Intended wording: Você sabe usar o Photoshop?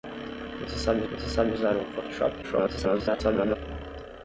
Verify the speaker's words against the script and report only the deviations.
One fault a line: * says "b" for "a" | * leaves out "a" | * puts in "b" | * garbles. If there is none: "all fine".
* puts in "você sabe"
* garbles